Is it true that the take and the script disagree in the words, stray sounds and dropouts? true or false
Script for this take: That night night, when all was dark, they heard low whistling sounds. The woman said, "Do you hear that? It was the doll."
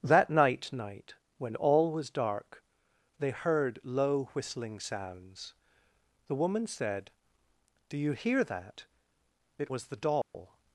true